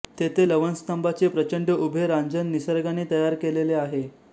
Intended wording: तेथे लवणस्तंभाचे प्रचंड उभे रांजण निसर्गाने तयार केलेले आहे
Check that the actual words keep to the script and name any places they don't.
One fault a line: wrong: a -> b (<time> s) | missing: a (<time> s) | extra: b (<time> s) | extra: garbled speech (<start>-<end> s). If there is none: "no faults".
no faults